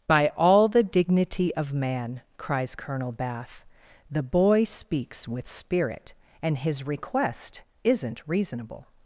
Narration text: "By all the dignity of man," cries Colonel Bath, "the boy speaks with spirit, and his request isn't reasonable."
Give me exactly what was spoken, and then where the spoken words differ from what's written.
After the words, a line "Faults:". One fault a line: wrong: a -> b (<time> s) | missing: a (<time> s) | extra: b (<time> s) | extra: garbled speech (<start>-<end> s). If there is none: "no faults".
"By all the dignity of man," cries Colonel Bath, "the boy speaks with spirit, and his request isn't reasonable."
Faults:
no faults